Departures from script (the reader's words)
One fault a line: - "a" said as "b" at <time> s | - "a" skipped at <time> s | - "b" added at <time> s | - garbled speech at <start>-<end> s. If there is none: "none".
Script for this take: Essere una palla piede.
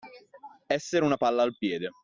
- "al" added at 1.4 s